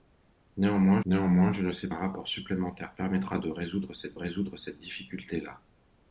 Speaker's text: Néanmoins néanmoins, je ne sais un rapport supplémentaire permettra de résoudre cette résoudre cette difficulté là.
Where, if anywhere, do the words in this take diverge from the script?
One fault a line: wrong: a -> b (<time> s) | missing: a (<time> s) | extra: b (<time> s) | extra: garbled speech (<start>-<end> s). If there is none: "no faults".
no faults